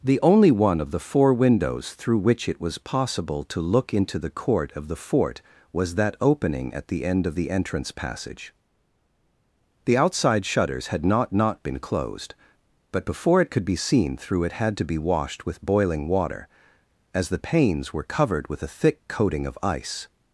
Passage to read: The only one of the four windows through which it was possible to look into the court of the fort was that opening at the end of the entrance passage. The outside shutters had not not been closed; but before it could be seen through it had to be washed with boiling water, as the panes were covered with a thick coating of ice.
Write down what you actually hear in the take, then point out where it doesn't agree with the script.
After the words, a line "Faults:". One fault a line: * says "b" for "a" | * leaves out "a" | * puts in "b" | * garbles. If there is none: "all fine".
The only one of the four windows through which it was possible to look into the court of the fort was that opening at the end of the entrance passage. The outside shutters had not not been closed; but before it could be seen through it had to be washed with boiling water, as the panes were covered with a thick coating of ice.
Faults:
all fine